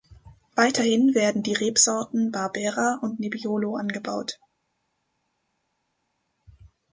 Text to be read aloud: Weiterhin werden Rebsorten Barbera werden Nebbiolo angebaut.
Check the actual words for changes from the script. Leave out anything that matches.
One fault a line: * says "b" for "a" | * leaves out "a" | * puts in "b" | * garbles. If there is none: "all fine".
* puts in "die"
* says "und" for "werden"